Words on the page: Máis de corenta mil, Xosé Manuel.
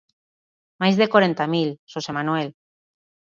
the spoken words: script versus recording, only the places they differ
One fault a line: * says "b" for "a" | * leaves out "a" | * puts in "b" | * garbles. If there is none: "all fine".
all fine